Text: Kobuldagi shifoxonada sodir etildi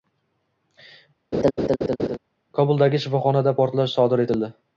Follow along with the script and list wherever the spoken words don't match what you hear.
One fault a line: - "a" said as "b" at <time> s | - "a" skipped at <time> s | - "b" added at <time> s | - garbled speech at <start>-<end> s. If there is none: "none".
- "portlash" added at 3.6 s